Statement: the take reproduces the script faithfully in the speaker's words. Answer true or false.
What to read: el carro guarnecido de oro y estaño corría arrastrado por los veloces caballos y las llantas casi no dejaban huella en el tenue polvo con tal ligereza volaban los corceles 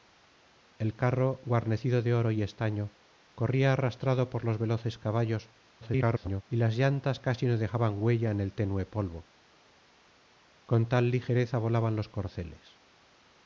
false